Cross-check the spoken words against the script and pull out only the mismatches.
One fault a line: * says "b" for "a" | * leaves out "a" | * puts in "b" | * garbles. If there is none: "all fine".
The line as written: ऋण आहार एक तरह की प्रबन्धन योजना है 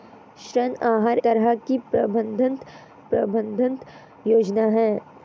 * leaves out "एक"
* puts in "प्रबन्धन"